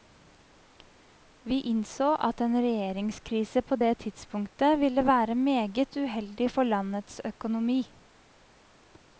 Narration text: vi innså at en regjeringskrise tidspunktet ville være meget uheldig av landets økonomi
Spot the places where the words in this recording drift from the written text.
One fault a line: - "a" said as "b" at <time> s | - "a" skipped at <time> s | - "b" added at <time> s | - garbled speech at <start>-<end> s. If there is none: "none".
- "på det" added at 3.6 s
- "av" said as "for" at 6.5 s